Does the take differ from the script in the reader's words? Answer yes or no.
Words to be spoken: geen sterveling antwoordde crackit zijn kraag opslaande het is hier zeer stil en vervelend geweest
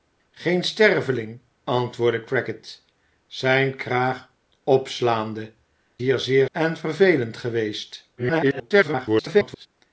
yes